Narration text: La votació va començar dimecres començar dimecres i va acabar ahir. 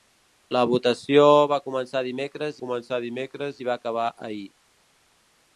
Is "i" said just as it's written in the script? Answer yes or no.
yes